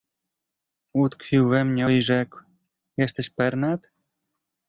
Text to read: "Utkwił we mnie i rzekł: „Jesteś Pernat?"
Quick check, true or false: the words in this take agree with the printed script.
true